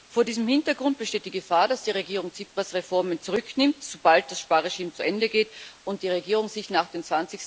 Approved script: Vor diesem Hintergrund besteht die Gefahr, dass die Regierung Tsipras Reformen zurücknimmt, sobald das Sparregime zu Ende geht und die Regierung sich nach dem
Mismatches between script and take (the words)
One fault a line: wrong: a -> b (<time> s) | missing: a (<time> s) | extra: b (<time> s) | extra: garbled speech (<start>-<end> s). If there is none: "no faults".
no faults